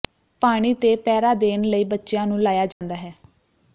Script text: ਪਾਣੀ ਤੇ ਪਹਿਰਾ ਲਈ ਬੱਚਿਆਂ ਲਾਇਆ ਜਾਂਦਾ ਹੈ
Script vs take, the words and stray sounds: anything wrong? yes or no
yes